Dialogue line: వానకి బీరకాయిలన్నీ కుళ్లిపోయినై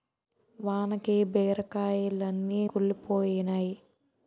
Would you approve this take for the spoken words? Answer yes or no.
yes